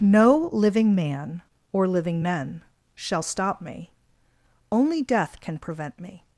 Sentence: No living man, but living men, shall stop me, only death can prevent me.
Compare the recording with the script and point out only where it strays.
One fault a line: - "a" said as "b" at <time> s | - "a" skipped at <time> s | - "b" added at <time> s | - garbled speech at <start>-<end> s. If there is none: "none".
- "but" said as "or" at 1.7 s